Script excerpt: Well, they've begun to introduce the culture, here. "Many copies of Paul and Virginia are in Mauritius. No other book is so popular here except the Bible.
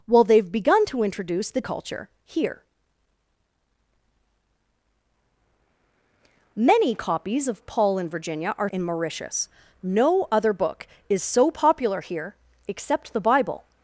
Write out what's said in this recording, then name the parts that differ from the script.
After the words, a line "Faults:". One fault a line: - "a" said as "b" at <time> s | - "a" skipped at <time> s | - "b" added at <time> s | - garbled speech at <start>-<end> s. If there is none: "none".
Well, they've begun to introduce the culture, here. "Many copies of Paul and Virginia are in Mauritius. No other book is so popular here except the Bible.
Faults:
none